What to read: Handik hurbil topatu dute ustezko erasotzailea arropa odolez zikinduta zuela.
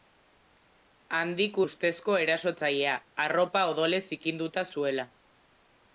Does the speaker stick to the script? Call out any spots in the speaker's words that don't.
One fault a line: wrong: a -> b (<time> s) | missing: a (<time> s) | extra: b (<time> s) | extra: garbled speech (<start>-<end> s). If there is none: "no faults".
missing: hurbil topatu dute (1.6 s)